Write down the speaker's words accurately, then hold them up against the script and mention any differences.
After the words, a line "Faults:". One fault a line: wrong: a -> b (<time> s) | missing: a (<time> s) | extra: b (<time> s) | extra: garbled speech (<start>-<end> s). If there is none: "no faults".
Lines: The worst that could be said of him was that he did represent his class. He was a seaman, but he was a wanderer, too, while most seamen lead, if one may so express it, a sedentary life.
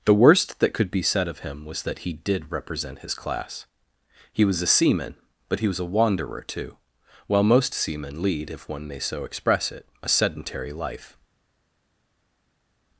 The worst that could be said of him was that he did represent his class. He was a seaman, but he was a wanderer, too, while most seamen lead, if one may so express it, a sedentary life.
Faults:
no faults